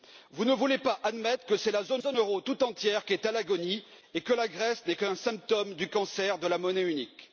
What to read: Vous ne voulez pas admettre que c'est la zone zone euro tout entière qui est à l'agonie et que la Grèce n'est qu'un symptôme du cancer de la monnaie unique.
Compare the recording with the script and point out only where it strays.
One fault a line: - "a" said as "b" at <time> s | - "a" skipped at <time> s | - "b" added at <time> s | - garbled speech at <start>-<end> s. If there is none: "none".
none